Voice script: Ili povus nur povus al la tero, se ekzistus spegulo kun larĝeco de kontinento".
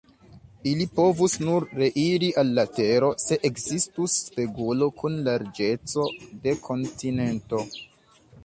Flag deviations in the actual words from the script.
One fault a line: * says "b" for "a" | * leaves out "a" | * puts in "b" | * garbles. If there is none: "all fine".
* says "reiri" for "povus"